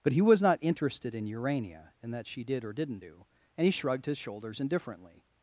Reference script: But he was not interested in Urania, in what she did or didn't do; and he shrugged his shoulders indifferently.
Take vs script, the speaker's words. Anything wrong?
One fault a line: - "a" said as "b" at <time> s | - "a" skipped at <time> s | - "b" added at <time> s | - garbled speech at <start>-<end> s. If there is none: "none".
- "what" said as "that" at 2.1 s